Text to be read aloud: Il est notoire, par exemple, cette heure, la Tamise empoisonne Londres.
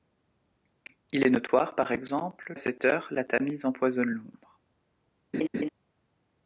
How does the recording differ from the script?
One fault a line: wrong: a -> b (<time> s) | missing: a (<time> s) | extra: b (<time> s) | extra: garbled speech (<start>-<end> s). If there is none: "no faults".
no faults